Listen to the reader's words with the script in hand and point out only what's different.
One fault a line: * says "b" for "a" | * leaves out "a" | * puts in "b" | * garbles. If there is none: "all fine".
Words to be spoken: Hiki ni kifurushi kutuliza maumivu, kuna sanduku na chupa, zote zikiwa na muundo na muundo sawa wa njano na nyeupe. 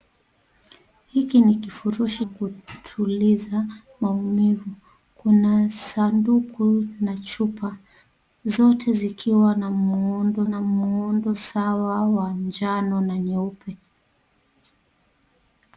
all fine